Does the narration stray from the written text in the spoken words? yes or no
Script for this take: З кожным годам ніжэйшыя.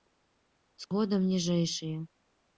yes